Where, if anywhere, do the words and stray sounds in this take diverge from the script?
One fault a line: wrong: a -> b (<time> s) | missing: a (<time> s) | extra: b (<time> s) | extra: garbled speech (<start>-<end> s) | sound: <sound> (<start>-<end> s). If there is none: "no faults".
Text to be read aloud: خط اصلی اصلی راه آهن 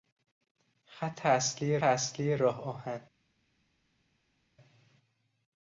no faults